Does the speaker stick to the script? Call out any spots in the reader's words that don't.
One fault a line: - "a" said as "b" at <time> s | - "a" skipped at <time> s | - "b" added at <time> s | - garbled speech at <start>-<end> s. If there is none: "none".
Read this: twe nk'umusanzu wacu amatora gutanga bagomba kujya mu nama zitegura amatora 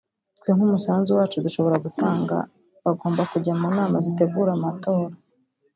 - "amatora" said as "dushobora" at 1.4 s